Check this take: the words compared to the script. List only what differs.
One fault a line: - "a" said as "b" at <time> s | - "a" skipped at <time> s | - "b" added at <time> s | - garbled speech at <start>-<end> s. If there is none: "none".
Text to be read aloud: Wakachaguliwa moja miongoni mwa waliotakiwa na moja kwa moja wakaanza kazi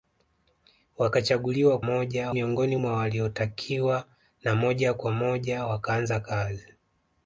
none